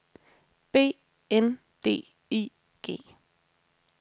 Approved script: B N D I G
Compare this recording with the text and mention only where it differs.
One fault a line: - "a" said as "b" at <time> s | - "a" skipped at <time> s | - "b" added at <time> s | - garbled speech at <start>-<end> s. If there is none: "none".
none